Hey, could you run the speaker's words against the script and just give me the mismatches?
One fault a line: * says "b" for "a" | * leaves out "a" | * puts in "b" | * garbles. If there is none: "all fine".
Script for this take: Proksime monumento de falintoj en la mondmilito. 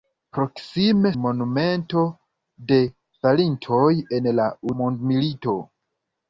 all fine